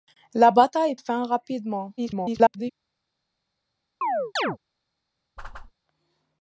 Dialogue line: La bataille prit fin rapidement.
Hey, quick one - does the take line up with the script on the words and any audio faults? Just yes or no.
no